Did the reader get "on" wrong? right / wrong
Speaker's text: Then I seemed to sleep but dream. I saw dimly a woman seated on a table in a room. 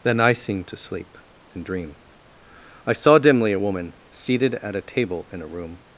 wrong